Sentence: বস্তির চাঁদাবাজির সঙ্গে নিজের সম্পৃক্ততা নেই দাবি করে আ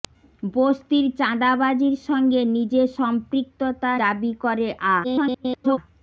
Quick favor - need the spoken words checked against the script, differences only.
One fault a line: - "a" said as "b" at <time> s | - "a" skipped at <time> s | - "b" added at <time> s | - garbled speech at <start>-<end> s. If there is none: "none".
- "নেই" skipped at 3.9 s
- garbled speech at 5.0-5.8 s